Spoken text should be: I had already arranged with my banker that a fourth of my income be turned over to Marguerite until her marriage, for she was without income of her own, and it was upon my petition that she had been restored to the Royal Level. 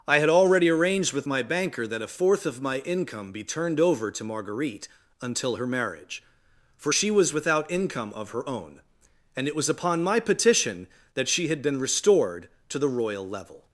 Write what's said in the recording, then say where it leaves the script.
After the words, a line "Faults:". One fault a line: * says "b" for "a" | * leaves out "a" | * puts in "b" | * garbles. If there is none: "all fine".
I had already arranged with my banker that a fourth of my income be turned over to Marguerite until her marriage, for she was without income of her own, and it was upon my petition that she had been restored to the Royal Level.
Faults:
all fine